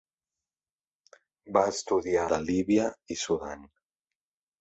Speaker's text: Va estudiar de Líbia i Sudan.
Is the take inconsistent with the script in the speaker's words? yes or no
no